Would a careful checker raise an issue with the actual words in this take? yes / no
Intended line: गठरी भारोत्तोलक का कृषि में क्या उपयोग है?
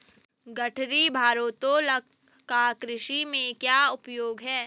no